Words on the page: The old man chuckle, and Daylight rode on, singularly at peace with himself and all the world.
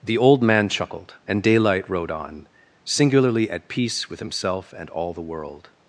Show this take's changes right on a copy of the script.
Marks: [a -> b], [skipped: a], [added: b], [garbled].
The old man [chuckle, -> chuckled] and Daylight rode on, singularly at peace with himself and all the world.